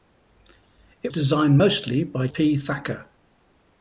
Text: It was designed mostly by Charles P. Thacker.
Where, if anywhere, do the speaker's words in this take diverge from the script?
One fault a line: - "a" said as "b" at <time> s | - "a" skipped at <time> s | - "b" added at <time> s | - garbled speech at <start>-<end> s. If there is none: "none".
- "was" skipped at 1.1 s
- "Charles" skipped at 2.3 s